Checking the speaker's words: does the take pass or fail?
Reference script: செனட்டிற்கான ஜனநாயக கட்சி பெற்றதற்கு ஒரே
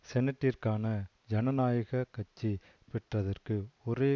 pass